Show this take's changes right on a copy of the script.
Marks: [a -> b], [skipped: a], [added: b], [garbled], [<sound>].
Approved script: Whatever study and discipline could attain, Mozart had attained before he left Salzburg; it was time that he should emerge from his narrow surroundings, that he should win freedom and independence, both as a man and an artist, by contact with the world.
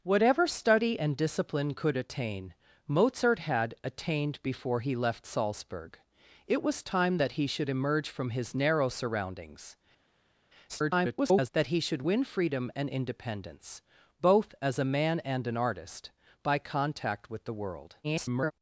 Whatever study and discipline could attain, Mozart had attained before he left Salzburg; it was time that he should emerge from his narrow surroundings, [garbled] that he should win freedom and independence, both as a man and an artist, by contact with the world. [garbled]